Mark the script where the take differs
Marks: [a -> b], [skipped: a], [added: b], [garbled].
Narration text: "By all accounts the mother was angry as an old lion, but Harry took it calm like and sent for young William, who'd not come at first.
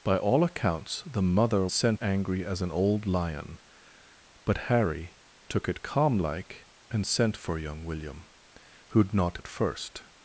"By all accounts the mother [was -> sent] angry as an old lion, but Harry took it calm like and sent for young William, who'd not [skipped: come] at first.